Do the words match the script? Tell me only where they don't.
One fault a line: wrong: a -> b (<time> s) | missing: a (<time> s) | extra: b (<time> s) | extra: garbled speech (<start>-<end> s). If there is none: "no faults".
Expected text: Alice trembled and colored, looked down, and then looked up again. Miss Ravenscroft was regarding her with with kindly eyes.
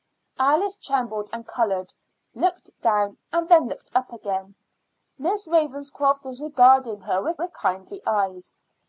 no faults